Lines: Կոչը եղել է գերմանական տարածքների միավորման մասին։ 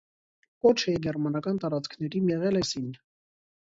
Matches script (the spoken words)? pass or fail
fail